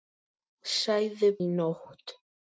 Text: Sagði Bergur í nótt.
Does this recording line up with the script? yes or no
no